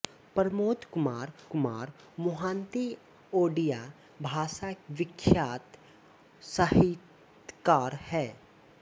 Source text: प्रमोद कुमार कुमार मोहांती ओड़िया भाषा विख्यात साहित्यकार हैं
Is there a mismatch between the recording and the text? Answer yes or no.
no